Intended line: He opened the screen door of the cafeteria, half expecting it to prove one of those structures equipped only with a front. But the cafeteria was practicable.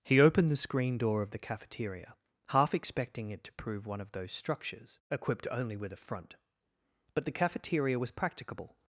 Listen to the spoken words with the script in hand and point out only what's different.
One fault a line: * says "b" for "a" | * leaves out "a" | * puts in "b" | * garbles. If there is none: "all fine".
all fine